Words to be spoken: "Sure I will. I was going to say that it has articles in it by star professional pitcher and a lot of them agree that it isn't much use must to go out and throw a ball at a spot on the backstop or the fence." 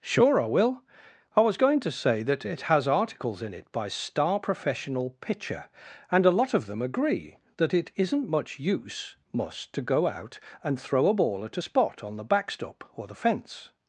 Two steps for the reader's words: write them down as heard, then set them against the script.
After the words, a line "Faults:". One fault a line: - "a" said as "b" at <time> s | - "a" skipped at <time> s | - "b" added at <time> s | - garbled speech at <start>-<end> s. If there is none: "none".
"Sure I will. I was going to say that it has articles in it by star professional pitcher and a lot of them agree that it isn't much use must to go out and throw a ball at a spot on the backstop or the fence."
Faults:
none